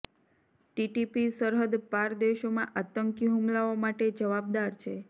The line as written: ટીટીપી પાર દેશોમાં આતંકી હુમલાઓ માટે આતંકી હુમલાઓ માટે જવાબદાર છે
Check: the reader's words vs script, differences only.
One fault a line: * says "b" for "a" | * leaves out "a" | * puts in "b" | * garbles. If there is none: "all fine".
* puts in "સરહદ"
* leaves out "આતંકી હુમલાઓ માટે"